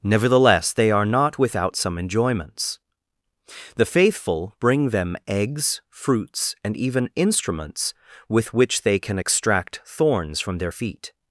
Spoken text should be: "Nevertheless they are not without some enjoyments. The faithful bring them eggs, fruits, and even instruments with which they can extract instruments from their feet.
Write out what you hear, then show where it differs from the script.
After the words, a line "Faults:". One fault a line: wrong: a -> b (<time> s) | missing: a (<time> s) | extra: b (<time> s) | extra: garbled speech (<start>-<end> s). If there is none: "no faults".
"Nevertheless they are not without some enjoyments. The faithful bring them eggs, fruits, and even instruments with which they can extract thorns from their feet.
Faults:
wrong: instruments -> thorns (9.8 s)